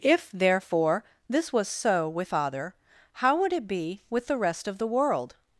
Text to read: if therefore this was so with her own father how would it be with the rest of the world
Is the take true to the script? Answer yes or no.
no